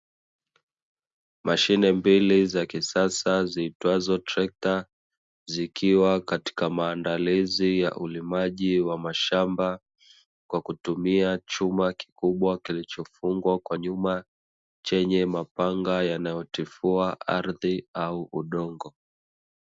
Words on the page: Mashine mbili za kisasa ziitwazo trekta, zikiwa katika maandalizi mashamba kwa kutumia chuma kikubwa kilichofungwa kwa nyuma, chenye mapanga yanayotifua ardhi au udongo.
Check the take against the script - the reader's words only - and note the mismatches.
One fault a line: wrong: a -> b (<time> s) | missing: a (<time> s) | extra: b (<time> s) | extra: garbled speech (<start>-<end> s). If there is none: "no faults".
extra: ya ulimaji wa (7.8 s)